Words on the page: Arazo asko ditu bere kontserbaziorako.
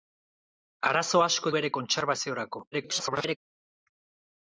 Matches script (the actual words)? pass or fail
fail